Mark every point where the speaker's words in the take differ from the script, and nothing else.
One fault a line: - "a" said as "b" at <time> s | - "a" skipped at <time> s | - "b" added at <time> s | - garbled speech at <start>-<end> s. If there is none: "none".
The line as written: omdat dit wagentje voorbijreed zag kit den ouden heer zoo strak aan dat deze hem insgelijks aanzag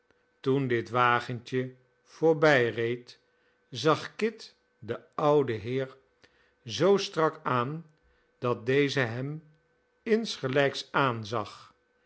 - "omdat" said as "toen" at 0.4 s